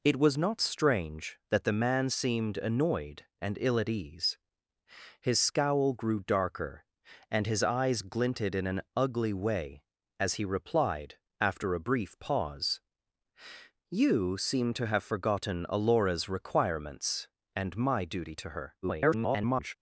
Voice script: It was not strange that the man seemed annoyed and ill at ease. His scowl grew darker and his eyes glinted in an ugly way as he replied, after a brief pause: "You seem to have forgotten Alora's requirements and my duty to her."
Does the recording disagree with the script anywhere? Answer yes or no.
yes